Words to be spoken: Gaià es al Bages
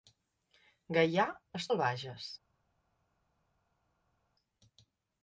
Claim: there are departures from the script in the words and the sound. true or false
false